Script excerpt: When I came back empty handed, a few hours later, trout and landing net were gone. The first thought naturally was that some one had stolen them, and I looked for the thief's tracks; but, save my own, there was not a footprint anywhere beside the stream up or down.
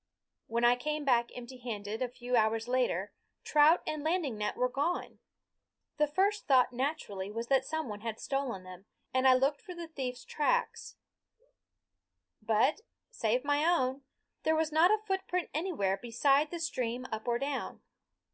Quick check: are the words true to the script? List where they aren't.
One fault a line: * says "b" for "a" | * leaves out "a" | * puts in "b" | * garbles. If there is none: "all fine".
all fine